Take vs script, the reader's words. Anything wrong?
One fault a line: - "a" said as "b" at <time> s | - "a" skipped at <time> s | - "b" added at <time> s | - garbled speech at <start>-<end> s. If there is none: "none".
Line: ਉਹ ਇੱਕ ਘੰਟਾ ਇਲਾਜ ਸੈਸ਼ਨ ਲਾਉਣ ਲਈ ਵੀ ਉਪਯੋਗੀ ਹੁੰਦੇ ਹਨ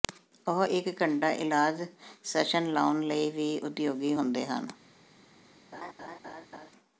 none